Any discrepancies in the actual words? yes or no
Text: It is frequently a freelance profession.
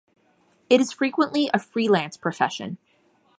no